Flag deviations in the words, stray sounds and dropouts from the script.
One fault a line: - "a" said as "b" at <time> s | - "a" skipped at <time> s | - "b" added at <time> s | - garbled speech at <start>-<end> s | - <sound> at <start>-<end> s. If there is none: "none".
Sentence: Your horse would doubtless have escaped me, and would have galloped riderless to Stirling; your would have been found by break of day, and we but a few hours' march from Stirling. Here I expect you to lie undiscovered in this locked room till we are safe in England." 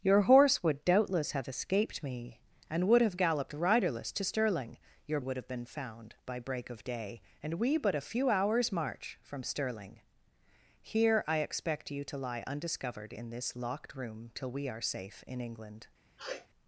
- sniff at 16.2-16.5 s